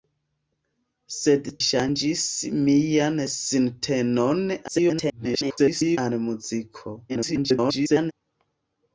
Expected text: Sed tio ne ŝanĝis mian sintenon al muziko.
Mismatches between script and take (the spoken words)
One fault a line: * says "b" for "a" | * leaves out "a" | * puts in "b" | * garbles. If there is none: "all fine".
* leaves out "tio ne"
* garbles
* garbles